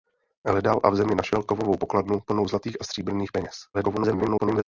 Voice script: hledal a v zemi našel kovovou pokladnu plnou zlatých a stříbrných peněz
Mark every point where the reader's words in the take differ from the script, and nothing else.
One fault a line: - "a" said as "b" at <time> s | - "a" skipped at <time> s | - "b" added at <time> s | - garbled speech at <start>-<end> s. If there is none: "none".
- garbled speech at 3.7-4.6 s